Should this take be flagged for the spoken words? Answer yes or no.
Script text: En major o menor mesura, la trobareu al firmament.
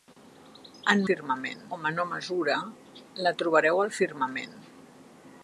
yes